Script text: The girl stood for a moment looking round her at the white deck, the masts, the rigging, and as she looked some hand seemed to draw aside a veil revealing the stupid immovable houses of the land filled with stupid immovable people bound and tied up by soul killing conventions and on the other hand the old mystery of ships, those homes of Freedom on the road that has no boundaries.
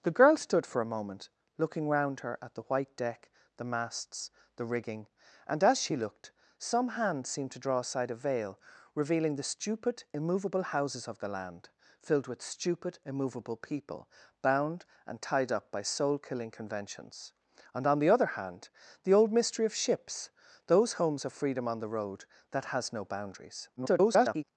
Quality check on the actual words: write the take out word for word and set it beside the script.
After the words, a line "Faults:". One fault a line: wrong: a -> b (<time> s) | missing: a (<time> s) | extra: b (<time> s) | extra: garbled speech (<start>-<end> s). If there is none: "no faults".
The girl stood for a moment looking round her at the white deck, the masts, the rigging, and as she looked some hand seemed to draw aside a veil revealing the stupid immovable houses of the land filled with stupid immovable people bound and tied up by soul killing conventions and on the other hand the old mystery of ships, those homes of Freedom on the road that has no boundaries. [garbled]
Faults:
extra: garbled speech (23.8-24.4 s)